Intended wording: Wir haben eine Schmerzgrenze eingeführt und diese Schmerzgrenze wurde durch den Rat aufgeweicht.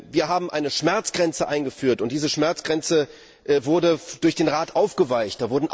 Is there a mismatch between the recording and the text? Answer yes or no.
no